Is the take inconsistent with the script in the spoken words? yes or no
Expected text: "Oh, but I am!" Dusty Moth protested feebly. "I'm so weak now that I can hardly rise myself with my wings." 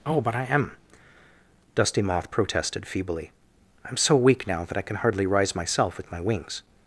no